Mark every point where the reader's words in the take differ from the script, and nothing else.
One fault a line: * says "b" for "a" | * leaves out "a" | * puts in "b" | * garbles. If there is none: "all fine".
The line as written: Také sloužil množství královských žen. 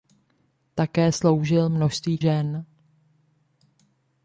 * leaves out "královských"